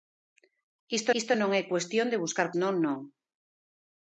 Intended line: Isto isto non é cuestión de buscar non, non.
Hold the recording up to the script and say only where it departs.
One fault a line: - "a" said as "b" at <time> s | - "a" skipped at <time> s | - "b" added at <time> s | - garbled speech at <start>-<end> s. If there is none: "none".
none